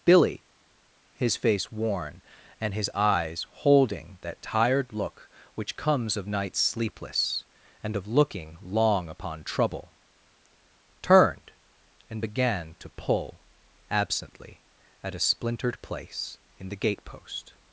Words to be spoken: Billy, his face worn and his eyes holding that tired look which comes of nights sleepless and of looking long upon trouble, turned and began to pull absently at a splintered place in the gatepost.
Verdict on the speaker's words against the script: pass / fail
pass